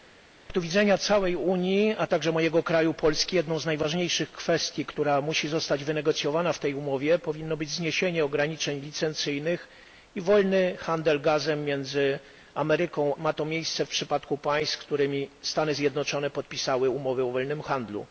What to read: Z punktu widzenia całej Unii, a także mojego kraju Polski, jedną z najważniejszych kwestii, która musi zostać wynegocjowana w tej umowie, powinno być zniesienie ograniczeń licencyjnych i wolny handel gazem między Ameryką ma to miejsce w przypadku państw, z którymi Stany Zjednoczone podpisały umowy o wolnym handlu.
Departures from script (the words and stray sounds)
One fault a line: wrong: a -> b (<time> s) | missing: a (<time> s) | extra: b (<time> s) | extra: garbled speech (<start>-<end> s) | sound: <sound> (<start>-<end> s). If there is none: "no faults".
no faults